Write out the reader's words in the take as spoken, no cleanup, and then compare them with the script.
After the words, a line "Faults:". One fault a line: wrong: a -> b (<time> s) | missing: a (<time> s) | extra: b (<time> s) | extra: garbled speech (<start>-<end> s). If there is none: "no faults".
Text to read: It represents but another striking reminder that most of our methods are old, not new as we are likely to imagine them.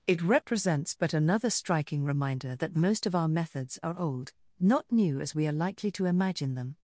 It represents but another striking reminder that most of our methods are old, not new as we are likely to imagine them.
Faults:
no faults